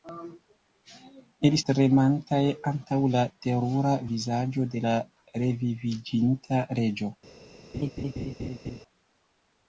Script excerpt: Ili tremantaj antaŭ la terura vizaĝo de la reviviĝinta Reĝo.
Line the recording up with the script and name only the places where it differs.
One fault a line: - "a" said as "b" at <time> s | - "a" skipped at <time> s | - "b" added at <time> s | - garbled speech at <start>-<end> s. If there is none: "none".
none